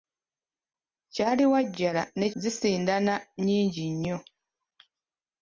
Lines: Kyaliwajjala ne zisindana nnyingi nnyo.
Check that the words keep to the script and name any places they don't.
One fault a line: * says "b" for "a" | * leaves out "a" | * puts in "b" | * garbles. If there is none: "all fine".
all fine